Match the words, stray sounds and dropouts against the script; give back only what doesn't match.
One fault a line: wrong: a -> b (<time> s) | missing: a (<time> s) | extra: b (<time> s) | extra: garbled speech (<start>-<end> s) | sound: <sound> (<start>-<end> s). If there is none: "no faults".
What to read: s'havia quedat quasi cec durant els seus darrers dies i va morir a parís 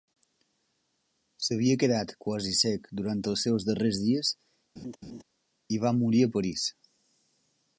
sound: laugh (4.8-5.2 s)